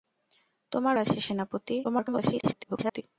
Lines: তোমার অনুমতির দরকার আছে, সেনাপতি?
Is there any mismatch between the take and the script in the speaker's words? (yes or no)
yes